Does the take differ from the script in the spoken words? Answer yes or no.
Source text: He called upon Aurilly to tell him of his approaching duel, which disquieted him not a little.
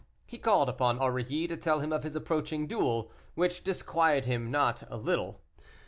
no